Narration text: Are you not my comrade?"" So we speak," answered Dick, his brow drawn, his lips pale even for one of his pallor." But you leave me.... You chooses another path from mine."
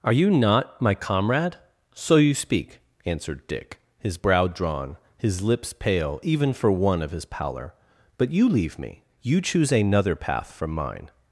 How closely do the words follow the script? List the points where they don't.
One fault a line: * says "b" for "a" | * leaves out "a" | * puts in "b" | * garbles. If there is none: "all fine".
* says "you" for "we"
* says "choose" for "chooses"